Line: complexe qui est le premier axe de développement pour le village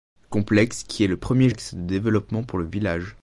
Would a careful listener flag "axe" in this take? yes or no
no